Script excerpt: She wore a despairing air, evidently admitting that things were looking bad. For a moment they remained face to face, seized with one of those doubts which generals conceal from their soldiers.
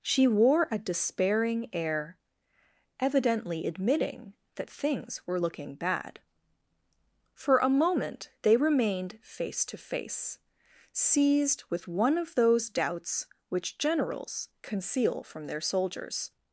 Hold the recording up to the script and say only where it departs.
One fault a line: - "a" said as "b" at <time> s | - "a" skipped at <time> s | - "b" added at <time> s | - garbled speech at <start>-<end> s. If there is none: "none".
none